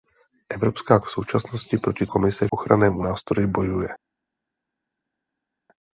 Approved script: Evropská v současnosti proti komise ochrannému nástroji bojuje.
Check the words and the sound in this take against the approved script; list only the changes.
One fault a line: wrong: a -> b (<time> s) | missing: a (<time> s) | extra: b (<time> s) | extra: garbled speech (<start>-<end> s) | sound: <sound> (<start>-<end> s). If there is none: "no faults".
no faults